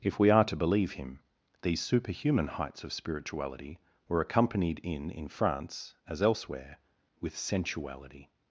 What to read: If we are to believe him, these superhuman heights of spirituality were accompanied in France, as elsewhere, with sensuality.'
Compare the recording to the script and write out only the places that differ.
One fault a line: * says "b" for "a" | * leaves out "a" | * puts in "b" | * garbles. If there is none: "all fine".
* puts in "in"